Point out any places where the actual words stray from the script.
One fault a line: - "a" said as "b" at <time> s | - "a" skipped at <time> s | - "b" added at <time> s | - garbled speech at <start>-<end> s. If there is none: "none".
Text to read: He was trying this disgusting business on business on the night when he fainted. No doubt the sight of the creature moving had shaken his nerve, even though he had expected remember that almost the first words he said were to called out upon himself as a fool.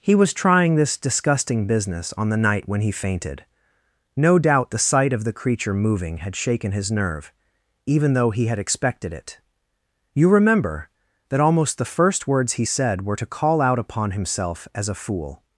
- "business on" skipped at 2.3 s
- "it You" added at 9.1 s
- "called" said as "call" at 13.2 s